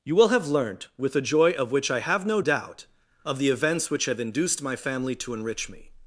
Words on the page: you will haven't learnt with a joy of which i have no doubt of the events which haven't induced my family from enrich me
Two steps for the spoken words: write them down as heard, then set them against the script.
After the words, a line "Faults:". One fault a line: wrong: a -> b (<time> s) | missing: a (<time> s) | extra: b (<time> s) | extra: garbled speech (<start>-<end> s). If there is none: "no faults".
you will have learnt with a joy of which i have no doubt of the events which have induced my family to enrich me
Faults:
wrong: haven't -> have (0.3 s)
wrong: haven't -> have (4.1 s)
wrong: from -> to (5.2 s)